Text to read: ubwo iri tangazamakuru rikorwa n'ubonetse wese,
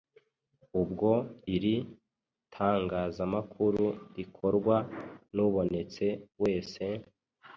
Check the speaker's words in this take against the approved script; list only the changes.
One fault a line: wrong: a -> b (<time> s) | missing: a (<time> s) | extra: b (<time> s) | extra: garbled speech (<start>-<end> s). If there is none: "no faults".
no faults